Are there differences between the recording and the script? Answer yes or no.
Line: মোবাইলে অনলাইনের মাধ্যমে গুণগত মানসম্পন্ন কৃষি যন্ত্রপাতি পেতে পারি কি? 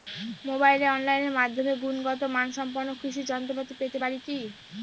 no